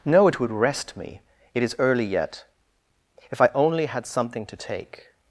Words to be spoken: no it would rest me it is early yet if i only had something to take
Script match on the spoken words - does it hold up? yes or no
yes